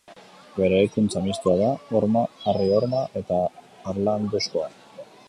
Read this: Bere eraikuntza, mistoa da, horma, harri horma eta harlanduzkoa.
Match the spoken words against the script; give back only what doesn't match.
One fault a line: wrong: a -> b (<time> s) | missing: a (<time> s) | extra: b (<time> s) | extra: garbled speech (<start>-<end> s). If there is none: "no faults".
no faults